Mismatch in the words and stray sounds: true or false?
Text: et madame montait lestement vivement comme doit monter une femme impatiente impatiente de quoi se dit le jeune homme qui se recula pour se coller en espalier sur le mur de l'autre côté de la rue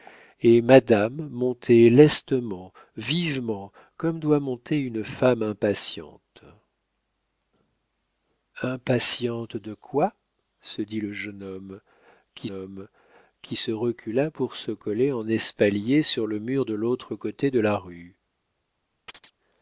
true